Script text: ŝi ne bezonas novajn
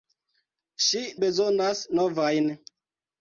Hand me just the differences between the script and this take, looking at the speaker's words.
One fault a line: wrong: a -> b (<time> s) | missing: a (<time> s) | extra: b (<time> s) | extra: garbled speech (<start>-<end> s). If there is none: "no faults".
missing: ne (1.0 s)